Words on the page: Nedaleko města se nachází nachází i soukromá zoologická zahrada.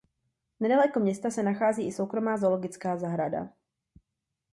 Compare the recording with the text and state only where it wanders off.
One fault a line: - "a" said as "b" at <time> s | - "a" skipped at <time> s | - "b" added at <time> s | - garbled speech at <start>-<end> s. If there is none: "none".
- "nachází" skipped at 1.9 s